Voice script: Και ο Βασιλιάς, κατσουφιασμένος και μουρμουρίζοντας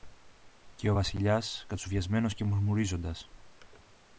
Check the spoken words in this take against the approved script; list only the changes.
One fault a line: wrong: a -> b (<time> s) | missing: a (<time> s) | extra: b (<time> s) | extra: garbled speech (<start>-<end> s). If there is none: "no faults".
no faults